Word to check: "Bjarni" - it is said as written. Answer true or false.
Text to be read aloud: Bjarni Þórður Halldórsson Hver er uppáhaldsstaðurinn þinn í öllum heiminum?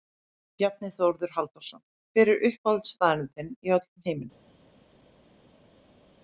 true